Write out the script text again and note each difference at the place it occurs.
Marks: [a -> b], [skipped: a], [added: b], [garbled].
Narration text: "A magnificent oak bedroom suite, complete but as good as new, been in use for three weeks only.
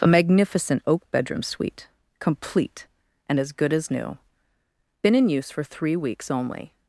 "A magnificent oak bedroom suite, complete [but -> and] as good as new, been in use for three weeks only.